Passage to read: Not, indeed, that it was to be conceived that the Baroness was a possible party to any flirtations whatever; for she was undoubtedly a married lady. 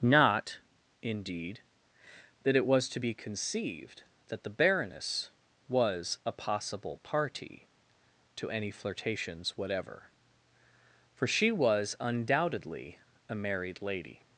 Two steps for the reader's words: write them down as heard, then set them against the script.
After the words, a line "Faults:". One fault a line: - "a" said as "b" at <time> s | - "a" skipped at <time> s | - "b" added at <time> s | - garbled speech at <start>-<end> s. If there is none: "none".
Not, indeed, that it was to be conceived that the Baroness was a possible party to any flirtations whatever; for she was undoubtedly a married lady.
Faults:
none